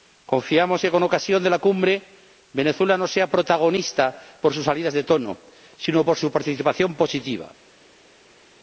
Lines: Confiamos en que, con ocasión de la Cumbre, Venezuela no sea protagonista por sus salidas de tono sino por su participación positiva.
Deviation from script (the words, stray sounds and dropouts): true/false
false